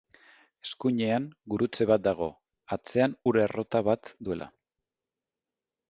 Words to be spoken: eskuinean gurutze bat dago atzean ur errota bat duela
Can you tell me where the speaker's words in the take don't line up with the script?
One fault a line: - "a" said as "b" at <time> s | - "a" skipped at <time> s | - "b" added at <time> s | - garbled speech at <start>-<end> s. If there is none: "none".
none